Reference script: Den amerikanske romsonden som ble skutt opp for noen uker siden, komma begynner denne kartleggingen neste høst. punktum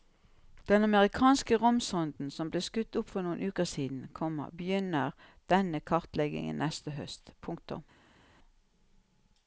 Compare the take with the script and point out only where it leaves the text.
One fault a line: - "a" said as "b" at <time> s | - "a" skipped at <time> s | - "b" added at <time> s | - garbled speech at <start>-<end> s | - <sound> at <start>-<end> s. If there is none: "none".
none